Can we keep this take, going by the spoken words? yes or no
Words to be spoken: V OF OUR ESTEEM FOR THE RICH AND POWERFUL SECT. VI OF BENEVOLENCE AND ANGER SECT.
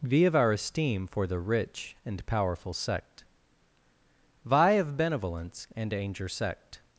yes